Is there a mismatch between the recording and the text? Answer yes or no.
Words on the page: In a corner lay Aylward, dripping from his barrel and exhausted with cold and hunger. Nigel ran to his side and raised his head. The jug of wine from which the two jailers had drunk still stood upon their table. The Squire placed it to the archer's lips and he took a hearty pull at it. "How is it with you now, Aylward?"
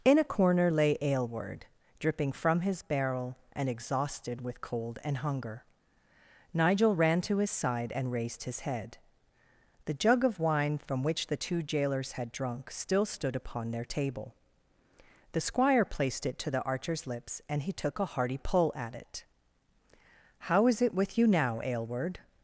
no